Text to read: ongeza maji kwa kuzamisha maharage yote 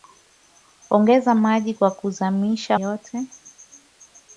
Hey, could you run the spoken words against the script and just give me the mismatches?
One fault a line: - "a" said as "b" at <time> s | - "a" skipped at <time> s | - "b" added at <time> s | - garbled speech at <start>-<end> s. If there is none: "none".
- "maharage" skipped at 2.8 s